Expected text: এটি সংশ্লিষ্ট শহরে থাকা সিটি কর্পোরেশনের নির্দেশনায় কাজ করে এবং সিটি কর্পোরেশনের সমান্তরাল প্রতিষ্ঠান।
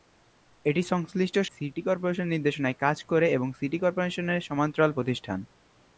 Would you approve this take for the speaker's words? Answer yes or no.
no